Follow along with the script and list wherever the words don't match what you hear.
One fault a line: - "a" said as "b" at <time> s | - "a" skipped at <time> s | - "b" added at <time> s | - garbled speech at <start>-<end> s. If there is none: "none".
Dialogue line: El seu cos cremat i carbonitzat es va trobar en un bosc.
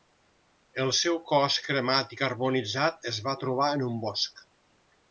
none